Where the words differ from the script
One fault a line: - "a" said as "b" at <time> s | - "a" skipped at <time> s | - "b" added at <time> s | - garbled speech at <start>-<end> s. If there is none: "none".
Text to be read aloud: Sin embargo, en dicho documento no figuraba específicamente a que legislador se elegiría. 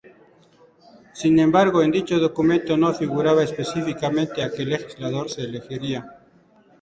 none